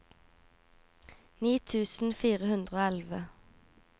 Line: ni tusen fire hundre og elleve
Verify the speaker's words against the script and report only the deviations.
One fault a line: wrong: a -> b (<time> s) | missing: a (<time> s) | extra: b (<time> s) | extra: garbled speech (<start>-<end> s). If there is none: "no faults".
no faults